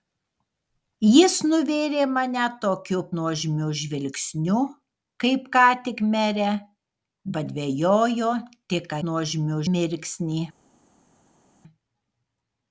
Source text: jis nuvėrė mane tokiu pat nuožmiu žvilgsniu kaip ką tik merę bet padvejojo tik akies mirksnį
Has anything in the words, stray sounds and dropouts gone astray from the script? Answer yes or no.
yes